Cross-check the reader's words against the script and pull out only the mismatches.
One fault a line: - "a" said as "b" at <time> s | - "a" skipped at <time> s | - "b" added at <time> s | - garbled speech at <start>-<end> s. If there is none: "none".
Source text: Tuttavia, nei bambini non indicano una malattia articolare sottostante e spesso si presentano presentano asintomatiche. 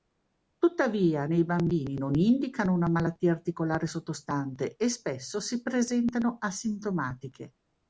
- "presentano" skipped at 6.4 s